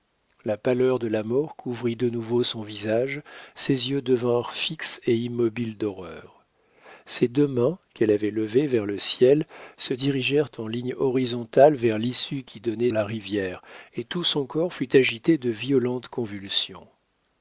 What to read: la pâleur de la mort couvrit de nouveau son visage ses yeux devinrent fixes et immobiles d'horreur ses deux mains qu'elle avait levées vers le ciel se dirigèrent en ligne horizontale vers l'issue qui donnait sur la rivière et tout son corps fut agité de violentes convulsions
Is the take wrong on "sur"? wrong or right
wrong